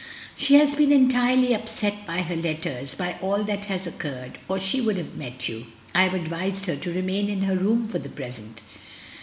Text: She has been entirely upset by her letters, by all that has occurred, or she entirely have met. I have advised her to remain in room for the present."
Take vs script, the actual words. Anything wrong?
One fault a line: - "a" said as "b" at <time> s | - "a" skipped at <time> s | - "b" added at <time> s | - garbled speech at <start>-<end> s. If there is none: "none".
- "entirely" said as "would" at 4.8 s
- "you" added at 5.5 s
- "her" added at 7.4 s